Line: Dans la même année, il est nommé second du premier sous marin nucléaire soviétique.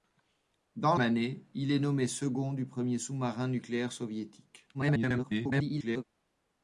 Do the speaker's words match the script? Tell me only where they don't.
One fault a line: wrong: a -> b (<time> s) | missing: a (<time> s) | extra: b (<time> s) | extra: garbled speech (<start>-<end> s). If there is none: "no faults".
missing: la même (0.9 s)
extra: garbled speech (4.7-6.0 s)